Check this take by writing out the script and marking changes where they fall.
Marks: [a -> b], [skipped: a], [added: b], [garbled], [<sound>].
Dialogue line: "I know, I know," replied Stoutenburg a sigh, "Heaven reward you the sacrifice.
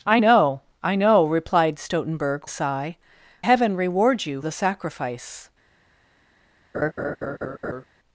"I know, I know," replied Stoutenburg a sigh, "Heaven reward you the sacrifice. [laugh]